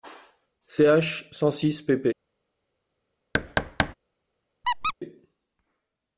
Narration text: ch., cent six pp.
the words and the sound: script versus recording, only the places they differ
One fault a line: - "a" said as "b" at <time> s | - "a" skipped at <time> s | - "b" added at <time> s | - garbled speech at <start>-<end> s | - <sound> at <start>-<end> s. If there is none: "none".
- thud at 3.3-3.9 s
- squeak at 4.6-4.9 s